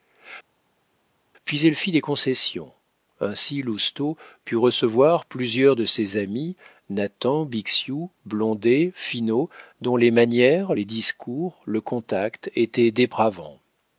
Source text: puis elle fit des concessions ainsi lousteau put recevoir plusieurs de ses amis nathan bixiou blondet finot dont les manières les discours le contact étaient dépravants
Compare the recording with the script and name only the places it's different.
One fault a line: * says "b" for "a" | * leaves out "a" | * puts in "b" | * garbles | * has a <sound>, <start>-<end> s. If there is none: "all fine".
all fine